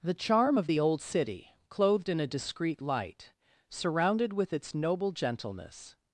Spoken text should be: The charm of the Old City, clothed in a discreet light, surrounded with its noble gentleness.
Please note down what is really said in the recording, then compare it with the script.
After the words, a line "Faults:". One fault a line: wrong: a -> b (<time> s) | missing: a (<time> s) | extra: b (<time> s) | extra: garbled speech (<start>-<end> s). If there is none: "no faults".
The charm of the Old City, clothed in a discreet light, surrounded with its noble gentleness.
Faults:
no faults